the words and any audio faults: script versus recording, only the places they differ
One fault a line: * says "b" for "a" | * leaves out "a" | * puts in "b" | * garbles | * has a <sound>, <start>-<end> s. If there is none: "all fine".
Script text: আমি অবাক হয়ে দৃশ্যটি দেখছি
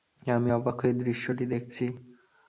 all fine